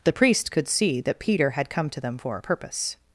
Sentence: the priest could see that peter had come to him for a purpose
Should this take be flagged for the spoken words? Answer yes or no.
yes